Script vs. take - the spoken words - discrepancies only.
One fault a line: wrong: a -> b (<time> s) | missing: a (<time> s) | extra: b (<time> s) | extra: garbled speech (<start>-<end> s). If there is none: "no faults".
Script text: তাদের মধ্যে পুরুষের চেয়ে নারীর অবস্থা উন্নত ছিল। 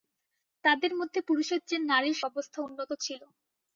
no faults